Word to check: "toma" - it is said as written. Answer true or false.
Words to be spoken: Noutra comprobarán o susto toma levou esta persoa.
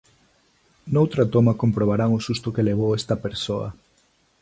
false